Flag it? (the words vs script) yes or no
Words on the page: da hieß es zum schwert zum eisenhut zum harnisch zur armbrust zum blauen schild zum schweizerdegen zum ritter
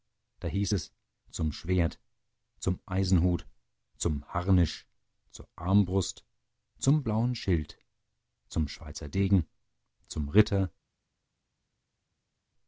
no